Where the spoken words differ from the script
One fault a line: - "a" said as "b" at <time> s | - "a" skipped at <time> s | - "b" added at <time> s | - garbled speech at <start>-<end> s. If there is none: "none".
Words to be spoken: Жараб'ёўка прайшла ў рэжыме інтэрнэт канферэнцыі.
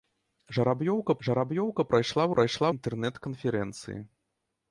- "жараб'ёўка" added at 1.3 s
- "рэжыме" said as "прайшла" at 2.3 s